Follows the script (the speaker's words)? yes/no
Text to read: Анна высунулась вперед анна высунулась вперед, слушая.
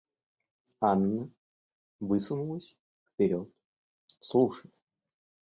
no